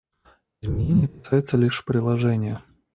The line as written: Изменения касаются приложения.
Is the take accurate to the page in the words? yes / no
no